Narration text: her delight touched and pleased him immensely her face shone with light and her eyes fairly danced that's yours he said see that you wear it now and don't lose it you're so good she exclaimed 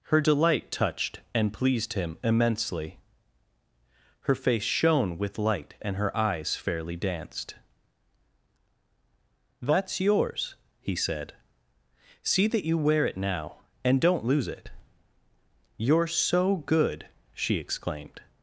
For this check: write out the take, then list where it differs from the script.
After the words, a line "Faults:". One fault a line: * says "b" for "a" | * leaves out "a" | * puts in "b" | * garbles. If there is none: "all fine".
her delight touched and pleased him immensely her face shone with light and her eyes fairly danced that's yours he said see that you wear it now and don't lose it you're so good she exclaimed
Faults:
all fine